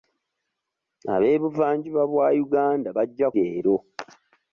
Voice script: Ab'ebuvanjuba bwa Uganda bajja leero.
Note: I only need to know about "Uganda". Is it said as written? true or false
true